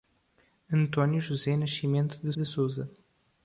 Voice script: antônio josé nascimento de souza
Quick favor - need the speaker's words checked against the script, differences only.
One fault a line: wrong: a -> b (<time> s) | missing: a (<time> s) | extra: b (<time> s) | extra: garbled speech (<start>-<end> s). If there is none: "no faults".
extra: de (2.4 s)